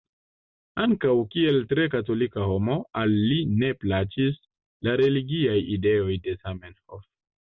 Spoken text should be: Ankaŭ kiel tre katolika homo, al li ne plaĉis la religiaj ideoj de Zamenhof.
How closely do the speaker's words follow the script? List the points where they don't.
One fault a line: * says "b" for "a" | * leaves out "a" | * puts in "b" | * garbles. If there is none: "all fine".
all fine